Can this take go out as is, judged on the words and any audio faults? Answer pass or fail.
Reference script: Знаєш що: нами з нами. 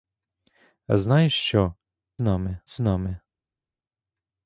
pass